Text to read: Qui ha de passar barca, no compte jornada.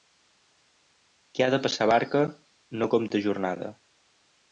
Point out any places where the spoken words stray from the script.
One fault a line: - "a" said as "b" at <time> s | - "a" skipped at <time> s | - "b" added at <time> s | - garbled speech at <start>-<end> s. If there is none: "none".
none